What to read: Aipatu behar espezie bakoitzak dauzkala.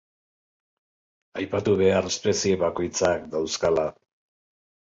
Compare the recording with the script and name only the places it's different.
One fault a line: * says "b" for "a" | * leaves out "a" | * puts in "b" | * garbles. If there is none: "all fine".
all fine